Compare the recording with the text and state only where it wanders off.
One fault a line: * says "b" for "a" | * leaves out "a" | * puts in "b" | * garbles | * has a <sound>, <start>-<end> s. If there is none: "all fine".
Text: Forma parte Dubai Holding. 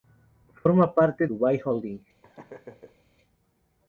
* has a laugh, 2.2-3.1 s